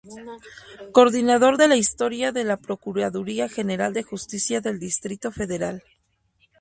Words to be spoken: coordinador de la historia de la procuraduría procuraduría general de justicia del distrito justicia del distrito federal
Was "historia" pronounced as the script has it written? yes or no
yes